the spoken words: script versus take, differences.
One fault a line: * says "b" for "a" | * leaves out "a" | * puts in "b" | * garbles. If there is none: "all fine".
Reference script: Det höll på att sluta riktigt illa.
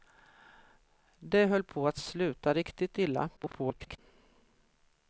* garbles